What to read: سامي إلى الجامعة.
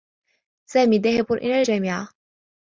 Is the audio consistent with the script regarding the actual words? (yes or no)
no